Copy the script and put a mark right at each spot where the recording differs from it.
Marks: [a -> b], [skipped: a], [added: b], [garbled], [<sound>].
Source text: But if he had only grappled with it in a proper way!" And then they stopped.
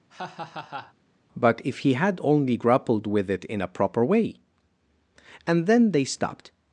[laugh] But if he had only grappled with it in a proper way!" And then they stopped.